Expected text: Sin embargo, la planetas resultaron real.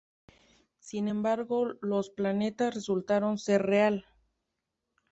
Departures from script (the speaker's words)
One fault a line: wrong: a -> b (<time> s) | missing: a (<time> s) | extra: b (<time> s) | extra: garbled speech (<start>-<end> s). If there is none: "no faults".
wrong: la -> los (1.8 s)
extra: ser (3.4 s)